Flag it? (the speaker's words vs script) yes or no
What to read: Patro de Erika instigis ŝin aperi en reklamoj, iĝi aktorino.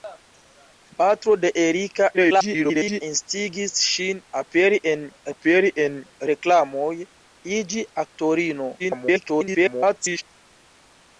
yes